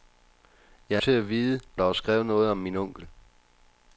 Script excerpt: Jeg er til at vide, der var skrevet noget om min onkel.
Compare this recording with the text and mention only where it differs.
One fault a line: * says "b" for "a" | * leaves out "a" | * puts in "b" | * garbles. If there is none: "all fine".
all fine